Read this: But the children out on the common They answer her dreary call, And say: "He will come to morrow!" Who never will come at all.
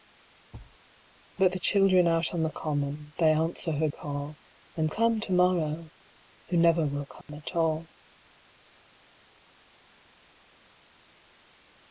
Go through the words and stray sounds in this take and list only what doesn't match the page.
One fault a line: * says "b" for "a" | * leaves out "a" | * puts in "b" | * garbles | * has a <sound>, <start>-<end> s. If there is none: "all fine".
* has a thud, 0.5-0.8 s
* leaves out "dreary"
* leaves out "say He will"
* has a dropout, 7.2-7.3 s